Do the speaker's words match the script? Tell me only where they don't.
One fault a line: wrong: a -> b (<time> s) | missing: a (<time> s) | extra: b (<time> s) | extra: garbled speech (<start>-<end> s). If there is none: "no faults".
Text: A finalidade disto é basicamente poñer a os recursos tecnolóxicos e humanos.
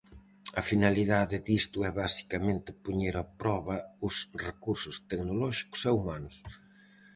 extra: proba (3.4 s)